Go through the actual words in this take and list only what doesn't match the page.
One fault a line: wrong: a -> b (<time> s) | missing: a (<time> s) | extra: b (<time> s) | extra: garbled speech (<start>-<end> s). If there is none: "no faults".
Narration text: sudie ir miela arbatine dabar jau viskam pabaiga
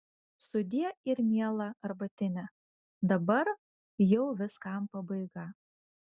no faults